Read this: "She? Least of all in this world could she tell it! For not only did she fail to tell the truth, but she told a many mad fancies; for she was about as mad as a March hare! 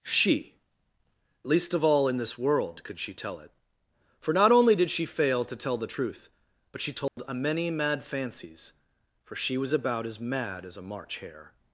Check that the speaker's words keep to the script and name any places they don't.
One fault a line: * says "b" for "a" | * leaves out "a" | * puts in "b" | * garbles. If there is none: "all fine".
all fine